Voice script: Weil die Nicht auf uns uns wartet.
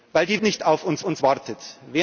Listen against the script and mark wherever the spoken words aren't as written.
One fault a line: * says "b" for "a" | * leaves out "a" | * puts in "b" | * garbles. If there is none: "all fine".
all fine